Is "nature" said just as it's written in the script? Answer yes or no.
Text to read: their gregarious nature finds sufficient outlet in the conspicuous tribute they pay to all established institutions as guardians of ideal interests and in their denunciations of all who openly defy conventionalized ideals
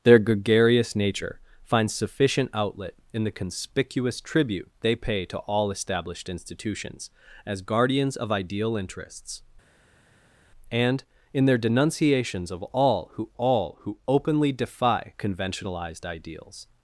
yes